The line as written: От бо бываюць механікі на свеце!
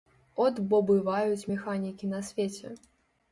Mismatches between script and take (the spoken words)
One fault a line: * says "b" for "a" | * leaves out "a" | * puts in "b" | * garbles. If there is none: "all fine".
all fine